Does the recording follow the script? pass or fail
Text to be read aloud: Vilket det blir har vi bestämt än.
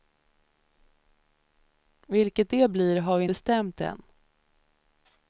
pass